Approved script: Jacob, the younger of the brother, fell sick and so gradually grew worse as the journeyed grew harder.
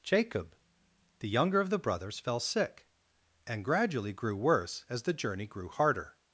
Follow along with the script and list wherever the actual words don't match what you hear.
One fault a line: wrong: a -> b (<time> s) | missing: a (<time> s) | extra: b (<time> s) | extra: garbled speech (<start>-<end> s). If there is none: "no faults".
wrong: brother -> brothers (1.8 s)
missing: so (3.6 s)
wrong: journeyed -> journey (5.1 s)